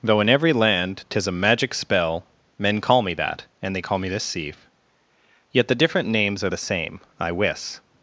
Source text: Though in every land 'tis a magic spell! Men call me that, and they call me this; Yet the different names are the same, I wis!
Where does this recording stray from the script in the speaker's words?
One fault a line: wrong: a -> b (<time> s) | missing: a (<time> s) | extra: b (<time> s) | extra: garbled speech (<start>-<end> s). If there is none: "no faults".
extra: sieve (4.2 s)